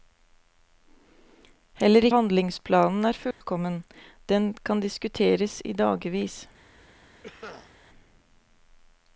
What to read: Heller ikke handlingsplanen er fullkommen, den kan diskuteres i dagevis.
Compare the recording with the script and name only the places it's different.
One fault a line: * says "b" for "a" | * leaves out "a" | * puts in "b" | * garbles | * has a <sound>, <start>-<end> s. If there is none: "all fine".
* leaves out "ikke"
* has a dropout, 3.3-3.4 s
* has a cough, 7.2-7.7 s